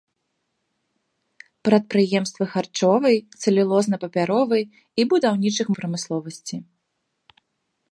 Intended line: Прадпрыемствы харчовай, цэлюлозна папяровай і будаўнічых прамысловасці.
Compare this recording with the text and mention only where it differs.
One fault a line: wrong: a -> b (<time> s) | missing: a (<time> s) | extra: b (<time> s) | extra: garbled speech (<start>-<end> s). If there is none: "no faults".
no faults